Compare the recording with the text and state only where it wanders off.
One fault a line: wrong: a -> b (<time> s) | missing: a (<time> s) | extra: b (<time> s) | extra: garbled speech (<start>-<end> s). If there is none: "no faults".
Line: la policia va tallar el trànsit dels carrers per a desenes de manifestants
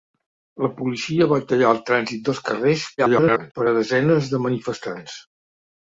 extra: garbled speech (3.0-3.5 s)